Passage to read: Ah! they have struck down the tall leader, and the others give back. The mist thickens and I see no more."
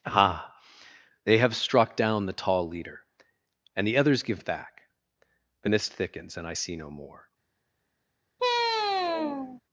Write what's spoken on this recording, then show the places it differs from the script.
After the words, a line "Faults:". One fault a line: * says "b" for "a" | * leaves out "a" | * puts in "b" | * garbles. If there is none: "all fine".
Ah! they have struck down the tall leader, and the others give back. The mist thickens and I see no more."
Faults:
all fine